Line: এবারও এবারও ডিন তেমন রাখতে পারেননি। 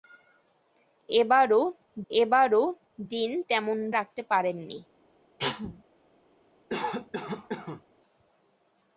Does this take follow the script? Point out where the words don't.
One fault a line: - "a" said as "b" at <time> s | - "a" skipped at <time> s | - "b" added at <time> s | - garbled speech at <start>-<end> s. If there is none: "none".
none